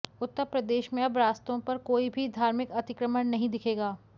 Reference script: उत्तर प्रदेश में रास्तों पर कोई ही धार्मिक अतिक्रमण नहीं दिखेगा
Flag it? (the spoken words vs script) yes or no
yes